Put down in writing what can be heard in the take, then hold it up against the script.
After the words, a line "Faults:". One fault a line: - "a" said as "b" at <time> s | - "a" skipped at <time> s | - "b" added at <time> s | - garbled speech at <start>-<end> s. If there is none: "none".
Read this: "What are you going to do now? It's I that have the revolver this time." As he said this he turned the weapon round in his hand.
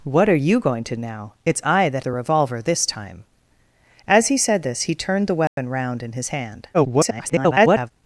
"What are you going to now? It's I that the revolver this time." As he said this he turned the weapon round in his hand. [garbled]
Faults:
- "do" skipped at 0.9 s
- "have" skipped at 2.0 s
- garbled speech at 6.7-7.9 s